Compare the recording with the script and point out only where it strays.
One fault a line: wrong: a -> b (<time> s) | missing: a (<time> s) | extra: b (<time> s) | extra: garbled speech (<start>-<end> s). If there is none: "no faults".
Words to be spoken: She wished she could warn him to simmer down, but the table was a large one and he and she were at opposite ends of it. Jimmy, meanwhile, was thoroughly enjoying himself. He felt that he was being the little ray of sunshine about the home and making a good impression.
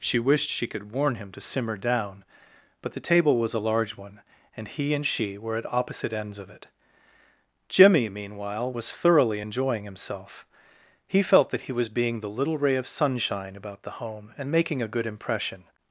no faults